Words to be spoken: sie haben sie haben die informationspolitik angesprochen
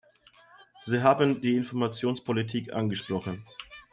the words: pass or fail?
fail